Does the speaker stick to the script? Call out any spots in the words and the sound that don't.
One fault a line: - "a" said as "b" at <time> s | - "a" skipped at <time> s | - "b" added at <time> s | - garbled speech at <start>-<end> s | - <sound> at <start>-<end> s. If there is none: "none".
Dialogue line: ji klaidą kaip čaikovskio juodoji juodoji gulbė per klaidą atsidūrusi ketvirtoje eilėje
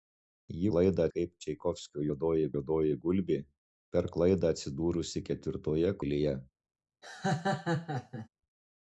- laugh at 7.0-8.3 s